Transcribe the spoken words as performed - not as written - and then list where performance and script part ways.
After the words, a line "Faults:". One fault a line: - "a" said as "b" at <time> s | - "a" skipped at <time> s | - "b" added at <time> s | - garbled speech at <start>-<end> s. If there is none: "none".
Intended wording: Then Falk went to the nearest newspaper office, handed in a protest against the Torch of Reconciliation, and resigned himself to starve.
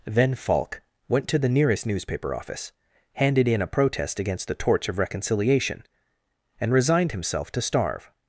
Then Falk went to the nearest newspaper office, handed in a protest against the Torch of Reconciliation, and resigned himself to starve.
Faults:
none